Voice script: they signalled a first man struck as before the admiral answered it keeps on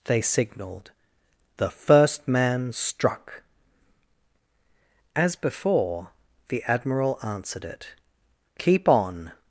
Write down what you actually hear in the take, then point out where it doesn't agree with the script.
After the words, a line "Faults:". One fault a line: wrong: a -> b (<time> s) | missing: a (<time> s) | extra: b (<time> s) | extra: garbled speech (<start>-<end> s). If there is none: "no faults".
they signalled the first man struck as before the admiral answered it keep on
Faults:
wrong: a -> the (1.6 s)
wrong: keeps -> keep (8.6 s)